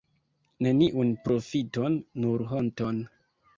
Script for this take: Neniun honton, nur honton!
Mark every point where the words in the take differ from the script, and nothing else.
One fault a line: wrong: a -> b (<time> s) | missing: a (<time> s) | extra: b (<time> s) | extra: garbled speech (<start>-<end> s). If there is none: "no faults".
wrong: honton -> profiton (1.3 s)